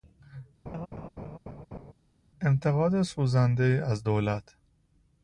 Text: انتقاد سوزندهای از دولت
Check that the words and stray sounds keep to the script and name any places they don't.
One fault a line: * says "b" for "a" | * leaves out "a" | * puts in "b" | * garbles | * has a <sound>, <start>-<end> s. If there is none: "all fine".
* has a laugh, 0.7-1.9 s